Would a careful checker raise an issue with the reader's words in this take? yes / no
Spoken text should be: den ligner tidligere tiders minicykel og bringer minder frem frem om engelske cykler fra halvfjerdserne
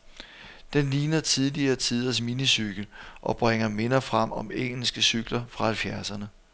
yes